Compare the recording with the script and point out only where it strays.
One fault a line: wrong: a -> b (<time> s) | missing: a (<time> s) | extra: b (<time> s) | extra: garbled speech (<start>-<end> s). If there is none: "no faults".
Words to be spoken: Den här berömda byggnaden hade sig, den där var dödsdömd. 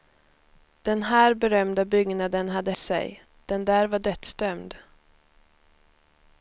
no faults